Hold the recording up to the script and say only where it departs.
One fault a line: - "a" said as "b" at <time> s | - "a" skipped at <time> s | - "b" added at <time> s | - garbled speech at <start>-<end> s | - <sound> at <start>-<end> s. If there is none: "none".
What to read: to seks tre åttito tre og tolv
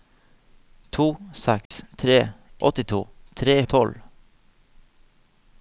- dropout at 1.7-1.7 s